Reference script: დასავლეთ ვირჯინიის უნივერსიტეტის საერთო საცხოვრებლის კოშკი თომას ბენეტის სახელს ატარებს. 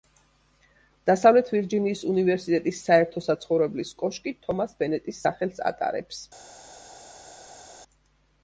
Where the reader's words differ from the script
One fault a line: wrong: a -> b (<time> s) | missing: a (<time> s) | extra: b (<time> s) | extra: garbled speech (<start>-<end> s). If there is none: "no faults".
no faults